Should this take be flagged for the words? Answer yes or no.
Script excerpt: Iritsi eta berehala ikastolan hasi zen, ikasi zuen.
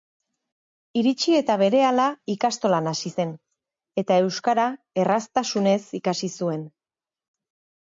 yes